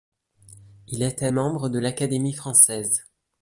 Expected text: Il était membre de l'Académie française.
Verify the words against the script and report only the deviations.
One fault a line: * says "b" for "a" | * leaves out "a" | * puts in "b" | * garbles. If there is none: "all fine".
all fine